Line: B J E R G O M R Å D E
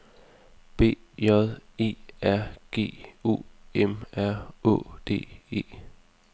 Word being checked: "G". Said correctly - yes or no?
yes